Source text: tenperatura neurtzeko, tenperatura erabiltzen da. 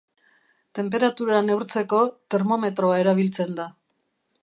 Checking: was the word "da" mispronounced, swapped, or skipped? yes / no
no